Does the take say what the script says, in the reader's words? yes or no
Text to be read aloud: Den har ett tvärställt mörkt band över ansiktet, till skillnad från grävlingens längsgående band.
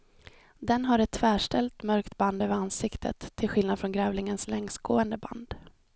yes